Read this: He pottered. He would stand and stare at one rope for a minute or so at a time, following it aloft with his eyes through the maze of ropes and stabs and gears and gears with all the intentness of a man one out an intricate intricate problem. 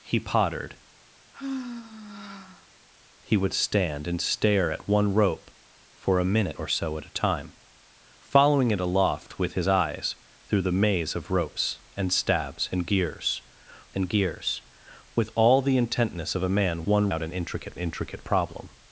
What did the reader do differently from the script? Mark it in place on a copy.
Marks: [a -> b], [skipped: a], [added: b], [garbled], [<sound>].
He pottered. [sigh] He would stand and stare at one rope for a minute or so at a time, following it aloft with his eyes through the maze of ropes and stabs and gears and gears with all the intentness of a man one out an intricate intricate problem.